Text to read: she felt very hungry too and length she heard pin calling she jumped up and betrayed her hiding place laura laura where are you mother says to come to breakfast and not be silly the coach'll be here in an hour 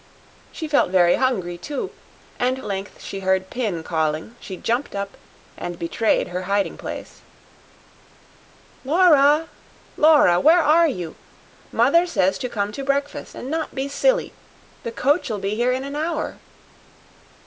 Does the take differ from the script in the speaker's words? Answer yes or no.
no